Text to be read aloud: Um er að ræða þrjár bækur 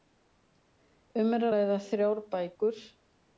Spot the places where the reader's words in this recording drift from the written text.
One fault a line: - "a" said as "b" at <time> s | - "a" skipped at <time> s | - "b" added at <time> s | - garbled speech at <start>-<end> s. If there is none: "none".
- "að" skipped at 1.5 s